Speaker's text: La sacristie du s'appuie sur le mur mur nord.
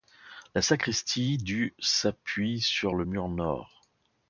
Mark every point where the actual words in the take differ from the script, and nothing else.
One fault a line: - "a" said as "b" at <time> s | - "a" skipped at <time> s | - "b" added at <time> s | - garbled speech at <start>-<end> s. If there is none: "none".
- "mur" skipped at 3.3 s